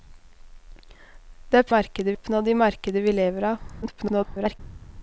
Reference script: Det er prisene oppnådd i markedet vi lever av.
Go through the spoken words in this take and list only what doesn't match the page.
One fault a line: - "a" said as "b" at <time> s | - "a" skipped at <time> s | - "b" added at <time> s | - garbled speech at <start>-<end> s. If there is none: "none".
- "prisene" said as "markedet" at 1.8 s
- garbled speech at 3.8-4.6 s